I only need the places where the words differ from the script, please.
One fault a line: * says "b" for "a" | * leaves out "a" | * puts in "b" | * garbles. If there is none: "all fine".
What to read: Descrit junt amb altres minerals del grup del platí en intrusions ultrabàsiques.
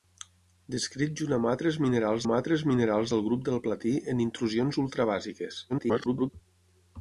* puts in "amb altres minerals"
* garbles